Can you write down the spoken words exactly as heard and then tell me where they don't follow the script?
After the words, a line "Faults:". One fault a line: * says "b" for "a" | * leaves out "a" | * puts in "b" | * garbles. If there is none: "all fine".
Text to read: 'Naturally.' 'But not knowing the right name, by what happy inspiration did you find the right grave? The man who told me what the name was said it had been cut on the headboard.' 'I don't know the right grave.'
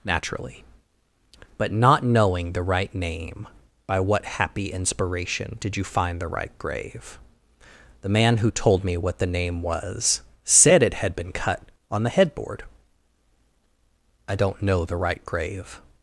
'Naturally.' 'But not knowing the right name, by what happy inspiration did you find the right grave? The man who told me what the name was said it had been cut on the headboard.' 'I don't know the right grave.'
Faults:
all fine